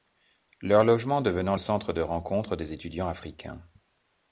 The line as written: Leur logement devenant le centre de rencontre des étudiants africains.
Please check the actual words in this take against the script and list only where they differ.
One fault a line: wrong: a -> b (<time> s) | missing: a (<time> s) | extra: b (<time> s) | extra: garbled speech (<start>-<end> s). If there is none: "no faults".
missing: le (1.6 s)